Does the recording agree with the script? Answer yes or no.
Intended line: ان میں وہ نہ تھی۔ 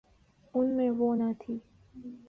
yes